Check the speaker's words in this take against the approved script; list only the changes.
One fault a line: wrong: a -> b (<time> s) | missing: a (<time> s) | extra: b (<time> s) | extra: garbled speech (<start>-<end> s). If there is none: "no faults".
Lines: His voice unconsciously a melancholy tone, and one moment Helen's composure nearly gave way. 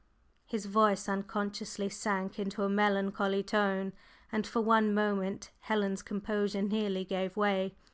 extra: sank into (1.9 s)
extra: for (4.5 s)